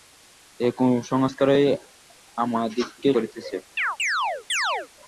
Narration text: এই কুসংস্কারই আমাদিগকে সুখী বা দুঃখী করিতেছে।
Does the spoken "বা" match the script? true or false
false